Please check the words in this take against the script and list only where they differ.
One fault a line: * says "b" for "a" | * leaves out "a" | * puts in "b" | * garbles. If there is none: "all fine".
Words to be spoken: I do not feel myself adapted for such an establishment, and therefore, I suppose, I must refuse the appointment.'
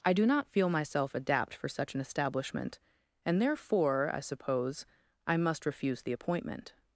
* says "adapt" for "adapted"